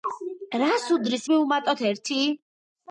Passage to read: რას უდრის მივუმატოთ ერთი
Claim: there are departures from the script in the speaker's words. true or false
false